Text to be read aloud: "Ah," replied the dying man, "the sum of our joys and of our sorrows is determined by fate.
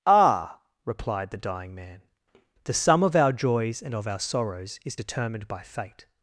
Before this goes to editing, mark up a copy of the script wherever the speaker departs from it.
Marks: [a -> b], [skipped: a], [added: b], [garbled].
"Ah," replied the dying man, "the sum of our joys and of our sorrows is determined by fate.